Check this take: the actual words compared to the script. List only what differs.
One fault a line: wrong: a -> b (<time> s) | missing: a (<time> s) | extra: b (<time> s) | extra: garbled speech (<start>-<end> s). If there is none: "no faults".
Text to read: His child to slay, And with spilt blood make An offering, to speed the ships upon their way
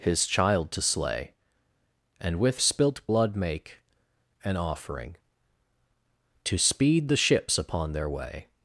no faults